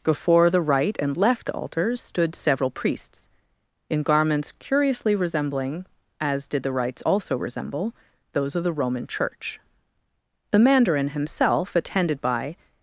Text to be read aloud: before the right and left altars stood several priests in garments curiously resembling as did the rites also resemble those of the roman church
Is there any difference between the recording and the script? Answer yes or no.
yes